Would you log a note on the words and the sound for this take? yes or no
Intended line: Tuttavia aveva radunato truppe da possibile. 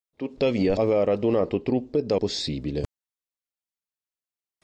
no